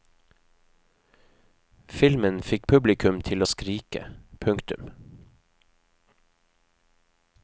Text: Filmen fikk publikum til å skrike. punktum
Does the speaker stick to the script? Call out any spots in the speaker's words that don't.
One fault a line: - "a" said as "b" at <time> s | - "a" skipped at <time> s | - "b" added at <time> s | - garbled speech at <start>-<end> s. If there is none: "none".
none